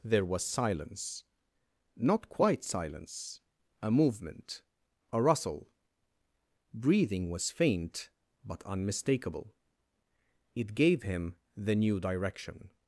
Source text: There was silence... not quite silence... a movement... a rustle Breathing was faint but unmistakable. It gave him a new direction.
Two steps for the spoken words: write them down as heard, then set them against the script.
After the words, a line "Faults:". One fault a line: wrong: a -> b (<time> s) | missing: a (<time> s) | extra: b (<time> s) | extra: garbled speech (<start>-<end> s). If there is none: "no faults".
There was silence... not quite silence... a movement... a rustle Breathing was faint but unmistakable. It gave him the new direction.
Faults:
wrong: a -> the (11.6 s)